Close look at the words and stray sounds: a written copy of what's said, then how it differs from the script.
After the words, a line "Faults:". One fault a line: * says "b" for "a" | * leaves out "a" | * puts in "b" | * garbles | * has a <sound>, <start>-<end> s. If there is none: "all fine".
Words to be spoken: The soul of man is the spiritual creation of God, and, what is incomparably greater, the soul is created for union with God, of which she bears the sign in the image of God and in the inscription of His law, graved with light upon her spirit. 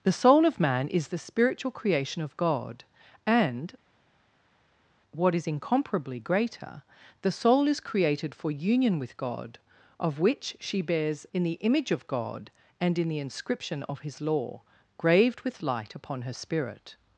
The soul of man is the spiritual creation of God, and, what is incomparably greater, the soul is created for union with God, of which she bears in the image of God and in the inscription of His law, graved with light upon her spirit.
Faults:
* leaves out "the sign"